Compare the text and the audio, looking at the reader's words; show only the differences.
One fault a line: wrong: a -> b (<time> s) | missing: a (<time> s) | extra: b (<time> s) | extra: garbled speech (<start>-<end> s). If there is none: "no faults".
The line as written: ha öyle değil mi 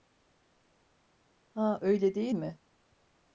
no faults